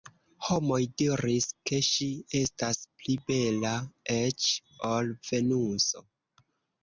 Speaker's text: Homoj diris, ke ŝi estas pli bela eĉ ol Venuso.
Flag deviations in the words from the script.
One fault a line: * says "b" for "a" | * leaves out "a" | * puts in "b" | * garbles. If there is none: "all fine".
all fine